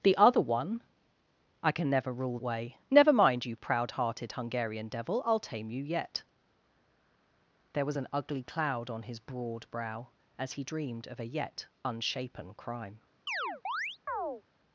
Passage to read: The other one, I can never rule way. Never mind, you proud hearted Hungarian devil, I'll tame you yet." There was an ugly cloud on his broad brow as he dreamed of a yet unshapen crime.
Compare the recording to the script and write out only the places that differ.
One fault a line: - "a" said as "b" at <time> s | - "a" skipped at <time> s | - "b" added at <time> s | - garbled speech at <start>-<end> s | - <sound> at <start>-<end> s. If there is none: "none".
- chirp at 13.3-14.4 s